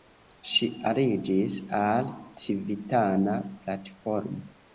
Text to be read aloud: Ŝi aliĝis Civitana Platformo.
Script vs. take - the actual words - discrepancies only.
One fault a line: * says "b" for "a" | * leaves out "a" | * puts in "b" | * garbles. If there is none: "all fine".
* puts in "al"